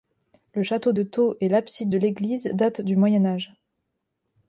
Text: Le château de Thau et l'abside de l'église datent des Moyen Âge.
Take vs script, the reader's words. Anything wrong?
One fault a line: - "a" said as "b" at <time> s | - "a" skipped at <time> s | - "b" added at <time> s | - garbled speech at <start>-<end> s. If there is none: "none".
- "des" said as "du" at 2.8 s